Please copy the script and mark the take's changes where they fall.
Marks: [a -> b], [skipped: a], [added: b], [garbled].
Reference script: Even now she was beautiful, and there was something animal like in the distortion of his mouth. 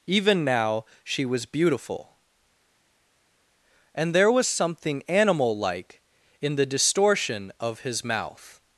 Even now she was beautiful, and there was something animal like in the distortion of his mouth.